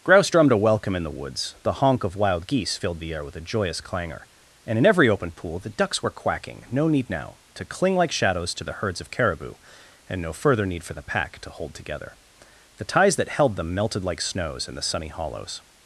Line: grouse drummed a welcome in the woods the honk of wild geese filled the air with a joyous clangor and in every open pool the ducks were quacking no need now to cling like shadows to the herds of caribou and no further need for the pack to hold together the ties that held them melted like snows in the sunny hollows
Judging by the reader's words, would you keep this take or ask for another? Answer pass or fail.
pass